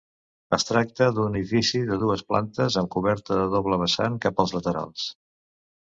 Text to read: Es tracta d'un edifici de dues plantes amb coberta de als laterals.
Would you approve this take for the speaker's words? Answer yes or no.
no